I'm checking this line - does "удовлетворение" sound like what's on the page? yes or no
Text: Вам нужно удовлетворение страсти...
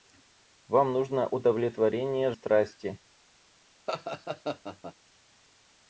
yes